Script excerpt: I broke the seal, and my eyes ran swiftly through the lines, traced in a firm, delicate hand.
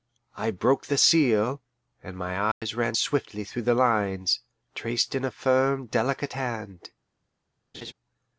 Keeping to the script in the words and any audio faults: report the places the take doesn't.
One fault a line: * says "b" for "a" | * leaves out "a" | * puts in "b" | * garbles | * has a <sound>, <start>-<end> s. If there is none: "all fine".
* has a dropout, 2.5-2.6 s
* has a laugh, 7.7-7.9 s